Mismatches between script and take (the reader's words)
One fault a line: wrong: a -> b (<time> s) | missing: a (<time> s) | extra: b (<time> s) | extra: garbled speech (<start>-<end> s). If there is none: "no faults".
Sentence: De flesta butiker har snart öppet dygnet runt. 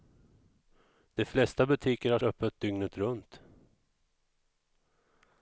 missing: snart (2.2 s)